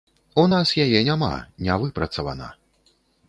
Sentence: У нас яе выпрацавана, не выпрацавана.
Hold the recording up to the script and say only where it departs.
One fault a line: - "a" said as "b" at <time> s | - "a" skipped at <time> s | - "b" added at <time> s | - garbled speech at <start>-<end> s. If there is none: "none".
- "выпрацавана" said as "няма" at 1.1 s